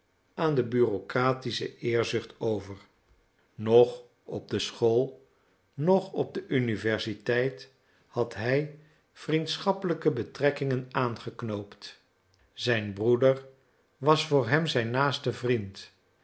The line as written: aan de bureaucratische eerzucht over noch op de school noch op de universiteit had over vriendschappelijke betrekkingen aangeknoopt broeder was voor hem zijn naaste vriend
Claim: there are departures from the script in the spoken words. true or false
true